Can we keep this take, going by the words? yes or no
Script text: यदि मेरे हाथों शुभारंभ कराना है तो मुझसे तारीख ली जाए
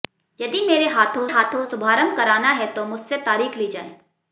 no